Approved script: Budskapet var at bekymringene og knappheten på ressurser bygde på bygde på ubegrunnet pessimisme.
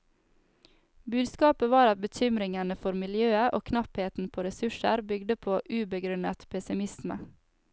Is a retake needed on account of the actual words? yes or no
yes